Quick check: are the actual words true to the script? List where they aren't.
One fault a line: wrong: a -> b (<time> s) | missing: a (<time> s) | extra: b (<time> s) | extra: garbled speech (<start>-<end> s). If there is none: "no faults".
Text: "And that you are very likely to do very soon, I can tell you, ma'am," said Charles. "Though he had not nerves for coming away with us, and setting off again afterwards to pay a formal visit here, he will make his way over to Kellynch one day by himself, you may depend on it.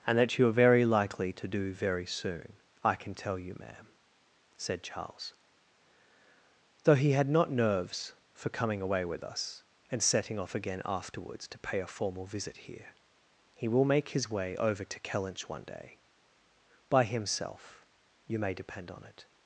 no faults